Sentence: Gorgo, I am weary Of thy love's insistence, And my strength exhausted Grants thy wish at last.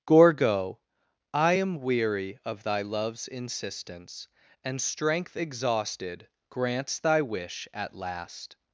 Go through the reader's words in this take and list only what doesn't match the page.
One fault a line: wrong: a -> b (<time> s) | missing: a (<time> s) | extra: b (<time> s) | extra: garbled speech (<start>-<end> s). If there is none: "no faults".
missing: my (4.8 s)